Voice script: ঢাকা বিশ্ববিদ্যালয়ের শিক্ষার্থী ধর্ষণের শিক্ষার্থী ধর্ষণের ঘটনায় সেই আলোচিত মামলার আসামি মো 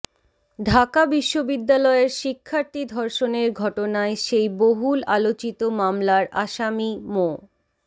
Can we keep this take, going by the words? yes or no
no